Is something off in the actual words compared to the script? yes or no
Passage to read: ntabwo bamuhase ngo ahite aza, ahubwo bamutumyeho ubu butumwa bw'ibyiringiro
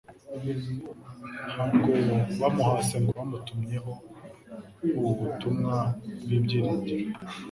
yes